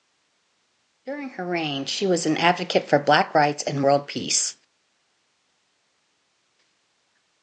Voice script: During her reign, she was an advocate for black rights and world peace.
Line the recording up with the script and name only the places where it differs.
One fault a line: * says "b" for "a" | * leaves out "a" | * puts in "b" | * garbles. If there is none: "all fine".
all fine